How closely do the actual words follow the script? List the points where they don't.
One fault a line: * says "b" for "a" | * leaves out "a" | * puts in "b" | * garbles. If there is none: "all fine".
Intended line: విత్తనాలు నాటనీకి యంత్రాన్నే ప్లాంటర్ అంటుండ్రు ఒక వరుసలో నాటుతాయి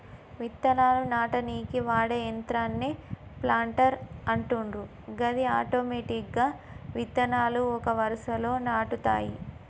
* puts in "వాడే"
* puts in "గది ఆటోమెటిక్గా విత్తనాలు"